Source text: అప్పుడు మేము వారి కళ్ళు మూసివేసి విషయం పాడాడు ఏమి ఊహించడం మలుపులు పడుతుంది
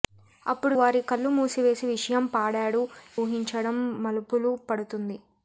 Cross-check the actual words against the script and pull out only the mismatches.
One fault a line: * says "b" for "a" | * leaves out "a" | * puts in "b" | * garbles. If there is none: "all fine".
* leaves out "మేము"
* leaves out "ఏమి"